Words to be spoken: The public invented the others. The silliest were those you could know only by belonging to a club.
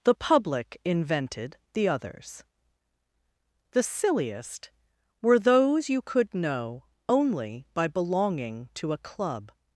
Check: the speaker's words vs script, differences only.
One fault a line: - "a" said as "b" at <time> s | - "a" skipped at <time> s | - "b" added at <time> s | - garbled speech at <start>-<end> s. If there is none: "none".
none